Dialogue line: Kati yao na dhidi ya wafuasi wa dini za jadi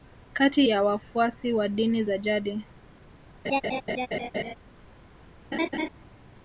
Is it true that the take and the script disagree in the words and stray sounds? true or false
true